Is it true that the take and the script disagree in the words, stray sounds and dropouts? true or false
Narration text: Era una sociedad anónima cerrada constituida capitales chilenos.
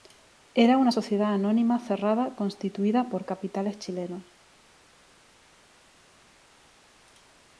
true